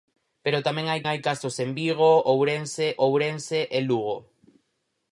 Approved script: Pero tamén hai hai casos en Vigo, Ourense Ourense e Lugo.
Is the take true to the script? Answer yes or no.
yes